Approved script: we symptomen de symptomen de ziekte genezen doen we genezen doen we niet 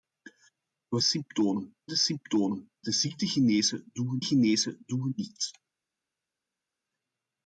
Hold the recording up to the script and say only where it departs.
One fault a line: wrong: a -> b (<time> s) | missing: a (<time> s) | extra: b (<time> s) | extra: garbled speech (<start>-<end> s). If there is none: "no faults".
no faults